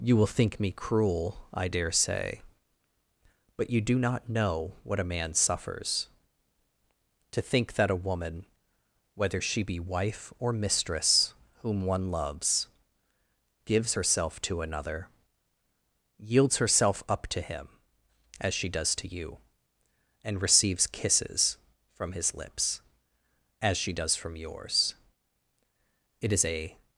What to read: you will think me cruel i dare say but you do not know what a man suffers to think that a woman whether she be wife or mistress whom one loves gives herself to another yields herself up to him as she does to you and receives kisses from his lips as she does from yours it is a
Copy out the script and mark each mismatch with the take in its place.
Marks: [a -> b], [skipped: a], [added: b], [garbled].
you will think me cruel i dare say but you do not know what a man suffers to think that a woman whether she be wife or mistress whom one loves gives herself to another yields herself up to him as she does to you and receives kisses from his lips as she does from yours it is a